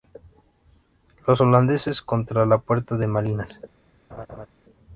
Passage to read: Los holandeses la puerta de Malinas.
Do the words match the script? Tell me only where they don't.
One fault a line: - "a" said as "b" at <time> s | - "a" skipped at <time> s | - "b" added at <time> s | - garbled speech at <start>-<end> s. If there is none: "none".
- "contra" added at 2.0 s